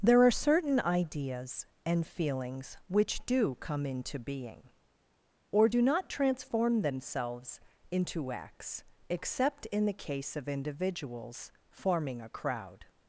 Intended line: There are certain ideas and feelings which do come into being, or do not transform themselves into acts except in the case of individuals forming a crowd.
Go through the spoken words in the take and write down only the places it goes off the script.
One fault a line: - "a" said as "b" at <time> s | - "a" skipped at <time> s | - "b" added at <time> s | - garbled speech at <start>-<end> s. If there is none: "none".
none